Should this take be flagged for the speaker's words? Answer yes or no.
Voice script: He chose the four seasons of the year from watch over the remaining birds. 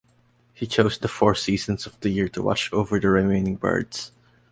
yes